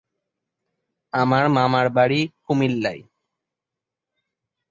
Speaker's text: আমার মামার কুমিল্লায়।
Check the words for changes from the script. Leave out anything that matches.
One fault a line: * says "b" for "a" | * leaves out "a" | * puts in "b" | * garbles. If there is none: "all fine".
* puts in "বাড়ি"